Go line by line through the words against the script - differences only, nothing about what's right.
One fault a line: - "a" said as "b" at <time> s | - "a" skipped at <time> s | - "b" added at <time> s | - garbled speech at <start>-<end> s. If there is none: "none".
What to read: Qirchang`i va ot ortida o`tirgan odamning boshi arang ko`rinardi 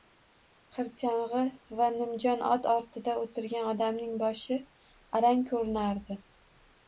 - "nimjon" added at 2.0 s